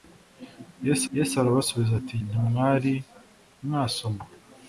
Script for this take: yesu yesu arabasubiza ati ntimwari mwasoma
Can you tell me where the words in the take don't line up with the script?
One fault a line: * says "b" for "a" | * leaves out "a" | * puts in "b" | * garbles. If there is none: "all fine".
all fine